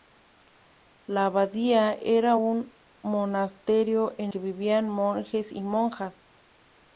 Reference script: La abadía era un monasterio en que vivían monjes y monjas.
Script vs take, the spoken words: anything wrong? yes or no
no